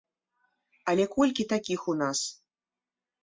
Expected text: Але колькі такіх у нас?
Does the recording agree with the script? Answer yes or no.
yes